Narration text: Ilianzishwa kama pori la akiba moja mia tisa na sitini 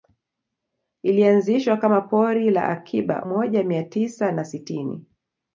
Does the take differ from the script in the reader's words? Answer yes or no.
no